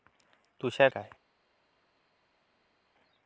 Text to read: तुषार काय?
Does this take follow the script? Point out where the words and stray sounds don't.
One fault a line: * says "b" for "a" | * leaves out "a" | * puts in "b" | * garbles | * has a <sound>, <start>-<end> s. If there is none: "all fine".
all fine